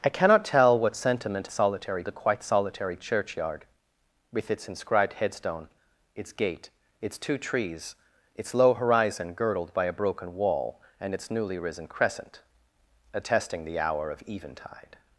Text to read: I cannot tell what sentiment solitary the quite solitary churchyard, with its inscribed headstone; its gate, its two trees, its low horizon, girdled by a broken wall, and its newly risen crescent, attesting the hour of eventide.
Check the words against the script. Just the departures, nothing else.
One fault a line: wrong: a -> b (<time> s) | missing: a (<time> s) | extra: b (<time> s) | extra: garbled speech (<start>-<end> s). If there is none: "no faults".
no faults